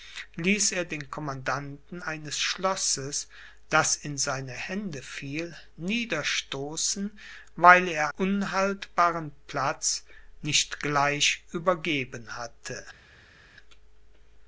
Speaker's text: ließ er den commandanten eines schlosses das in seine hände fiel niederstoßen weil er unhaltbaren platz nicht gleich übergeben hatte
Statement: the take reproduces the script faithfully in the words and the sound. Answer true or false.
true